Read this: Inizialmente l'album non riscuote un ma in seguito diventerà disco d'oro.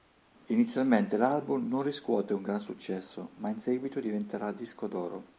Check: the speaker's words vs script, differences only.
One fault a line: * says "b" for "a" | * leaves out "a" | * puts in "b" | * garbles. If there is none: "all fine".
* puts in "gran successo"